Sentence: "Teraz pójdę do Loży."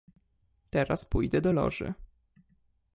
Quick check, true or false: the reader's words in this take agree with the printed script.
true